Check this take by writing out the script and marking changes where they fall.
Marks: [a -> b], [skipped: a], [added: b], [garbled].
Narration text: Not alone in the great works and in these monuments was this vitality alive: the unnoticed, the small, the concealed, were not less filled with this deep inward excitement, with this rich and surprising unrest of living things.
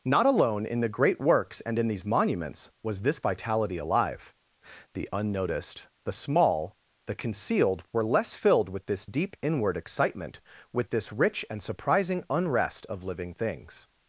Not alone in the great works and in these monuments was this vitality alive: the unnoticed, the small, the concealed, were [skipped: not] less filled with this deep inward excitement, with this rich and surprising unrest of living things.